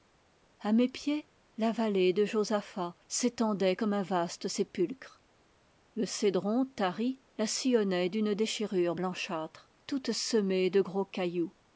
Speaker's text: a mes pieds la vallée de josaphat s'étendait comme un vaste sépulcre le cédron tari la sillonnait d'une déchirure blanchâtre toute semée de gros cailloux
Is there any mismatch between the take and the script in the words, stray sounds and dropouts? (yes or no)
no